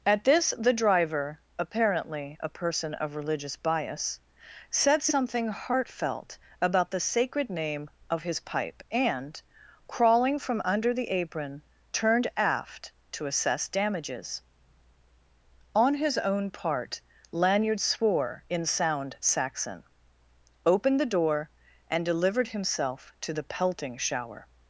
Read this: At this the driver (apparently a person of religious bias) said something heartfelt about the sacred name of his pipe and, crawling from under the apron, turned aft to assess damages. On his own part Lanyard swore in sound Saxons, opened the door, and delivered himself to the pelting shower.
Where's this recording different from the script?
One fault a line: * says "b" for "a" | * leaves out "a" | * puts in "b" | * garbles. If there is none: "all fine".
* says "Saxon" for "Saxons"